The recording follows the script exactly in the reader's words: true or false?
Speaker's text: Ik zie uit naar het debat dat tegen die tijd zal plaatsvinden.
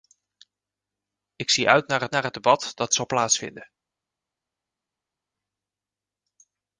false